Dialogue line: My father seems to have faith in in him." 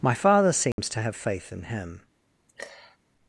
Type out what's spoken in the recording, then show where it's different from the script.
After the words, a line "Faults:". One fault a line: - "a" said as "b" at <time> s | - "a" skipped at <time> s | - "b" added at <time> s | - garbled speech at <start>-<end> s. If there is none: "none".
My father seems to have faith in him."
Faults:
- "in" skipped at 1.6 s